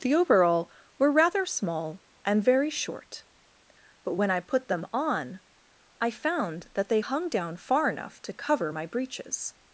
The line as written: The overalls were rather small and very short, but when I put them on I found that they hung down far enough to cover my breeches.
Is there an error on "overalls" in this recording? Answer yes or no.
yes